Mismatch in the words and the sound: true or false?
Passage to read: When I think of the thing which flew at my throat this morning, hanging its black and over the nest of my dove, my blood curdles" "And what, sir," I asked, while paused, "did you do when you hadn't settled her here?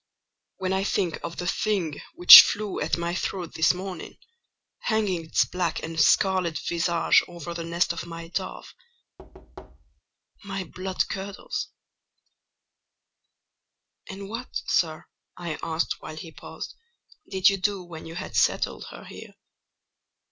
true